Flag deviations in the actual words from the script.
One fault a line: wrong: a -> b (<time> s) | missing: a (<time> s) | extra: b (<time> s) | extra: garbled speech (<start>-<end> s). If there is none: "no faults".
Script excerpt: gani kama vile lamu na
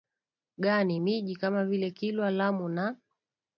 extra: miji (1.0 s)
extra: kilwa (1.9 s)